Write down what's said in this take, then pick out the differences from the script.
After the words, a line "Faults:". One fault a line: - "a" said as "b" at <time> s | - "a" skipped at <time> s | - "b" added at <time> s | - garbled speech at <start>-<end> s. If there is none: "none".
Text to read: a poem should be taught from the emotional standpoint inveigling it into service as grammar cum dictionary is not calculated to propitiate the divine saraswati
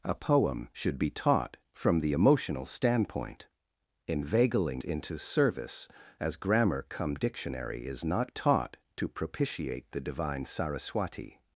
a poem should be taught from the emotional standpoint inveigling into service as grammar cum dictionary is not taught to propitiate the divine saraswati
Faults:
- "it" skipped at 4.8 s
- "calculated" said as "taught" at 8.3 s